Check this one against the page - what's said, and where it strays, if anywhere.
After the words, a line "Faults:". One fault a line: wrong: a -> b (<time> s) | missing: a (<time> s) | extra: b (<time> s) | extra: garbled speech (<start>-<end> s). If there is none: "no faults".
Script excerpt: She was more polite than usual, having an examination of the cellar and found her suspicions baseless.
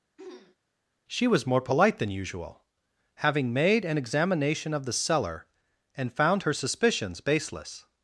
She was more polite than usual, having made an examination of the cellar and found her suspicions baseless.
Faults:
extra: made (3.5 s)